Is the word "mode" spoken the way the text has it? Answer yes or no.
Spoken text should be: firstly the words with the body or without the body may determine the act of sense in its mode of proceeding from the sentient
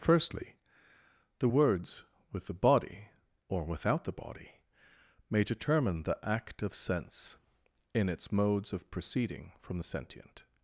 no